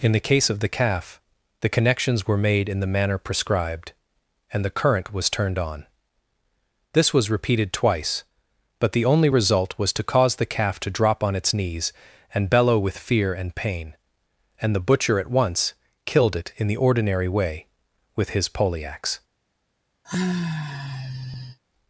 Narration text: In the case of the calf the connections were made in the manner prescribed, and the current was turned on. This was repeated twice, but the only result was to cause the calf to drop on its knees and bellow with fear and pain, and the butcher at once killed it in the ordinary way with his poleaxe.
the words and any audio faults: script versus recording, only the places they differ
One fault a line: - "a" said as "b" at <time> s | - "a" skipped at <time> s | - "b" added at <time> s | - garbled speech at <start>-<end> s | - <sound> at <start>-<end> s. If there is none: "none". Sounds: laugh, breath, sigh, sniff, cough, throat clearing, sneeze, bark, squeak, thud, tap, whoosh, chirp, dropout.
- sigh at 20.0-21.6 s